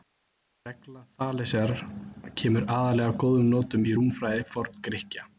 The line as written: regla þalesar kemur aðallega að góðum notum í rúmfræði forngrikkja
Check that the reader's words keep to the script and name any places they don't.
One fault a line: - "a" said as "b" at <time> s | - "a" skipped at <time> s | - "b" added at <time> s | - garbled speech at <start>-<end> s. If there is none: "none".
none